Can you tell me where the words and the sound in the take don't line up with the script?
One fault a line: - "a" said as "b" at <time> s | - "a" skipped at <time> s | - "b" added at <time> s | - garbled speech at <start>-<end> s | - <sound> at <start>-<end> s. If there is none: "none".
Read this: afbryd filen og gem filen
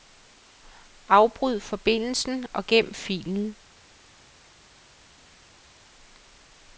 - "filen" said as "forbindelsen" at 1.6 s